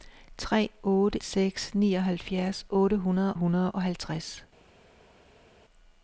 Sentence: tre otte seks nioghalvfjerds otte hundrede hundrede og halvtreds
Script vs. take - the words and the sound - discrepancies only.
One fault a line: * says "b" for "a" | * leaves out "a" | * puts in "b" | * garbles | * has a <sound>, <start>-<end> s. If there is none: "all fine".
all fine